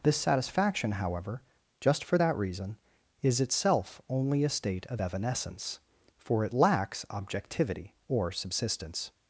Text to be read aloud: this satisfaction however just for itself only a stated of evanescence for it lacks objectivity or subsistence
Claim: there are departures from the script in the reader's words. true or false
true